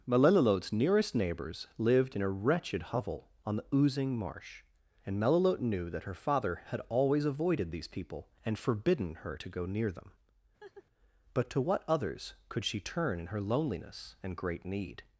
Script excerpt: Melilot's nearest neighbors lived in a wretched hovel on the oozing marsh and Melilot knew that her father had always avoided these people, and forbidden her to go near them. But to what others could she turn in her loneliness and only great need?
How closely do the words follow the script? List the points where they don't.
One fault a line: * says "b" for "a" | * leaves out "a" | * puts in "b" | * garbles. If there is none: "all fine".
* leaves out "only"